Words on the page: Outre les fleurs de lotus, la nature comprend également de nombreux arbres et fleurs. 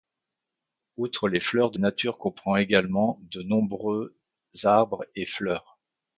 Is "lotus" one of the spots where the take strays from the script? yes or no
yes